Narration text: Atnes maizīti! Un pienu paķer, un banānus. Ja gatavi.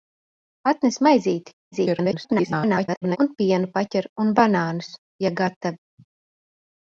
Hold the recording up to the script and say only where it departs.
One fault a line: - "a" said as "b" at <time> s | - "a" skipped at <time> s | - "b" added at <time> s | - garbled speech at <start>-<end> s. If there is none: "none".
- garbled speech at 1.7-3.2 s